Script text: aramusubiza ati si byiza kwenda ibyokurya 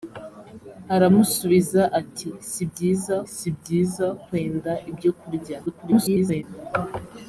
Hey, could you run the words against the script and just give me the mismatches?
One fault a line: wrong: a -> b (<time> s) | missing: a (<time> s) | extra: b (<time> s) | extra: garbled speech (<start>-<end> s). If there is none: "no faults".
extra: si byiza (3.3 s)
extra: garbled speech (5.7-6.4 s)